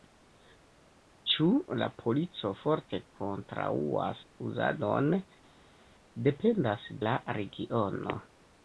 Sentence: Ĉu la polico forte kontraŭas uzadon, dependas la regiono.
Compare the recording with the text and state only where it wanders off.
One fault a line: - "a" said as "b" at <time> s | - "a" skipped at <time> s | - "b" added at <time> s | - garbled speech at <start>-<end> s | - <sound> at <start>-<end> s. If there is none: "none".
none